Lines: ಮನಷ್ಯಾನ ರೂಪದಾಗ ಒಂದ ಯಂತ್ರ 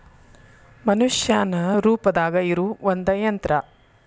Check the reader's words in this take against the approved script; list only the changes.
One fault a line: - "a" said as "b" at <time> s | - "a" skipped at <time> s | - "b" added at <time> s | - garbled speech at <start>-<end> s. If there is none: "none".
- "ಇರು" added at 2.4 s